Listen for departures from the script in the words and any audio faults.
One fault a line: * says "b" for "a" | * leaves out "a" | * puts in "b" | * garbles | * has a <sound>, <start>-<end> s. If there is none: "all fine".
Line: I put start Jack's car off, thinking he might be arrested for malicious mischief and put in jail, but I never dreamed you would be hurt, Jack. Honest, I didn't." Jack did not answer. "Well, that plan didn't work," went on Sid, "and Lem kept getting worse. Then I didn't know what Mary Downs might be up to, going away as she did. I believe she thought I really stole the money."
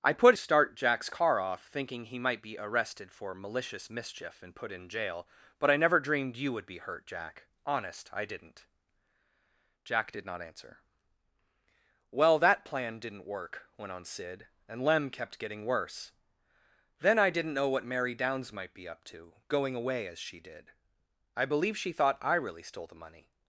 all fine